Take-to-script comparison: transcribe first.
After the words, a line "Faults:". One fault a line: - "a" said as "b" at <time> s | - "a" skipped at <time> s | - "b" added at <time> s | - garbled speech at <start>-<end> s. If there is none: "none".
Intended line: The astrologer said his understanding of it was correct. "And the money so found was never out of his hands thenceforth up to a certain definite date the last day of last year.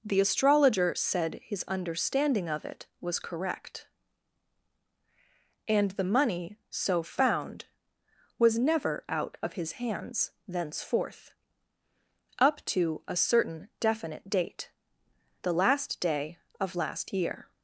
The astrologer said his understanding of it was correct. "And the money so found was never out of his hands thenceforth up to a certain definite date the last day of last year.
Faults:
none